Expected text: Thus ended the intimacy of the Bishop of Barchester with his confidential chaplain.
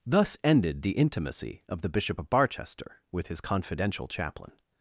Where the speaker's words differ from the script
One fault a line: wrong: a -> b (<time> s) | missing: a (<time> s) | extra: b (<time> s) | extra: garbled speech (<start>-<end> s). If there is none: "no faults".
no faults